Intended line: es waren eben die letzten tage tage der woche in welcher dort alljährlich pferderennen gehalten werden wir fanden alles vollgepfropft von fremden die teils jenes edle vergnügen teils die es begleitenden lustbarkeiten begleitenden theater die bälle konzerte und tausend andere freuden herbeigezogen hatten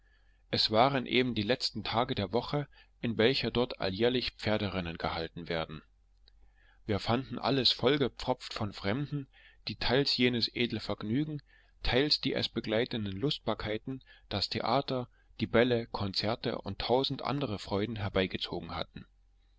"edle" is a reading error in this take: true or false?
false